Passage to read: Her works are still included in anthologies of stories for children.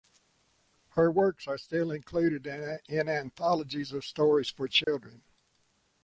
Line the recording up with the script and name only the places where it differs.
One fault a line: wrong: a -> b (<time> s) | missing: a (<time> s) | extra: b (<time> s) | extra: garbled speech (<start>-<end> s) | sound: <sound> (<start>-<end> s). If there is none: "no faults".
sound: dropout (4.8-4.9 s)